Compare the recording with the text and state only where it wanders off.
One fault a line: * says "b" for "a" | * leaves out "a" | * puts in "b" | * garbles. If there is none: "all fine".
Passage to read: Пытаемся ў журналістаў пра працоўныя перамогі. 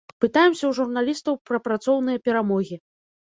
all fine